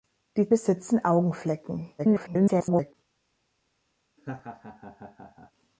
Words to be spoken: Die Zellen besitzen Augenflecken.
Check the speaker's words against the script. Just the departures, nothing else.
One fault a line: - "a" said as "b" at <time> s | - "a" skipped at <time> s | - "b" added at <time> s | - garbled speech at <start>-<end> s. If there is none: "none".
- "Zellen" skipped at 0.5 s
- garbled speech at 2.0-2.9 s